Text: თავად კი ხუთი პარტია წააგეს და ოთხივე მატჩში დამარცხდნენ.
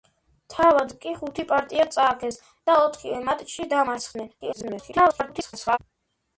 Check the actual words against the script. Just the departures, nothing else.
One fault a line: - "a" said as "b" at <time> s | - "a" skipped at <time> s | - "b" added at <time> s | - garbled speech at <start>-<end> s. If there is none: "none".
- garbled speech at 4.4-5.8 s